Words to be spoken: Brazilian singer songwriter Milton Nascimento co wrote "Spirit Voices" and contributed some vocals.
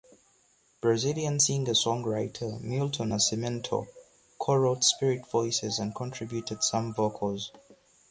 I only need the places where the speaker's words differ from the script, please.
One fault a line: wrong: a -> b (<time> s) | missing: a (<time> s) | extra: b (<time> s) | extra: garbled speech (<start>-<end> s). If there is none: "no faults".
no faults